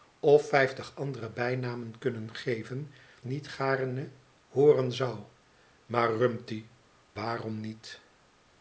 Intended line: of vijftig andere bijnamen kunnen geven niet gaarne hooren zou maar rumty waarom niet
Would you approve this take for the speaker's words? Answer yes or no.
yes